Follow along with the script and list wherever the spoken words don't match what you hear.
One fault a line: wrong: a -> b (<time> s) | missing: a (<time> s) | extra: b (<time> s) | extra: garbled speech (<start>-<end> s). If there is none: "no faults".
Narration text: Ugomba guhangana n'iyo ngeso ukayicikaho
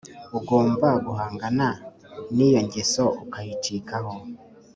no faults